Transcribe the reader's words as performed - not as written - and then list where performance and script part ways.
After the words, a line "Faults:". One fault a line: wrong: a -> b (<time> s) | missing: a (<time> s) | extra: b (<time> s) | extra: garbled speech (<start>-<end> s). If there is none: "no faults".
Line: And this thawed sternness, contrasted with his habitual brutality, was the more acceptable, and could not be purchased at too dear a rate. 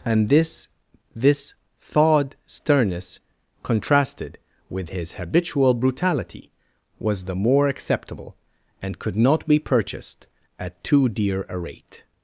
And this this thawed sternness, contrasted with his habitual brutality, was the more acceptable, and could not be purchased at too dear a rate.
Faults:
extra: this (1.1 s)